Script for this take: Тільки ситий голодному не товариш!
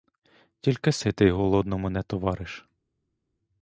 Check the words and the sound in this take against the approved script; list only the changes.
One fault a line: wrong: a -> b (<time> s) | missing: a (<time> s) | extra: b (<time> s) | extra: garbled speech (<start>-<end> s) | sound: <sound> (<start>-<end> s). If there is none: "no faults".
no faults